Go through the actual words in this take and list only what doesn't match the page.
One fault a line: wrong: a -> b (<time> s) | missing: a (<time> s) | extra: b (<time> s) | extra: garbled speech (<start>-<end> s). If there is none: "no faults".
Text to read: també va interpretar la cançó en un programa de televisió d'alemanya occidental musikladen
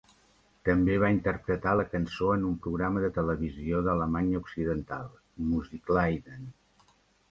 no faults